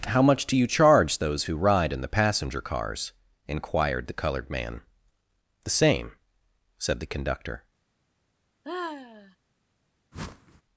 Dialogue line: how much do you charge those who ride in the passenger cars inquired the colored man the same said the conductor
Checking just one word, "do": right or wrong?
right